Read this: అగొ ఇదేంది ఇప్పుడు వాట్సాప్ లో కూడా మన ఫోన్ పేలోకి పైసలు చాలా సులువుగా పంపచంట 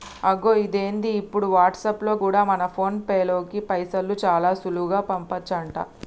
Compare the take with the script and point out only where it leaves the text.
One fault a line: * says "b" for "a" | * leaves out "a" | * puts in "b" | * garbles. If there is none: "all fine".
all fine